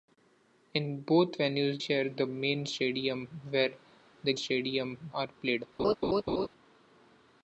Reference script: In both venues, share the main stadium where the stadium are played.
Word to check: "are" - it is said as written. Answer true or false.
true